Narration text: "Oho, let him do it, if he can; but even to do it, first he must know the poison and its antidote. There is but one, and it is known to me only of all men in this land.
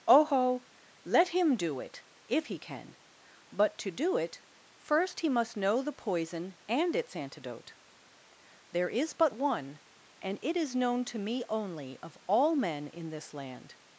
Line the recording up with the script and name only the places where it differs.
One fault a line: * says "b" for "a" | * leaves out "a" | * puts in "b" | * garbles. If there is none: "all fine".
* leaves out "even"